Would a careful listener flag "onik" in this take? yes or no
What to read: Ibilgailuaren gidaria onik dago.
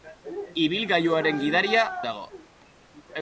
yes